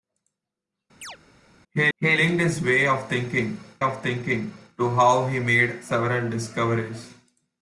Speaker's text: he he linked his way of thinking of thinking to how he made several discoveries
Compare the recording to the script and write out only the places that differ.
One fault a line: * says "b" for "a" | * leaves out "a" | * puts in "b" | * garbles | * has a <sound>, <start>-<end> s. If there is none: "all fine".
* has a chirp, 1.0-1.2 s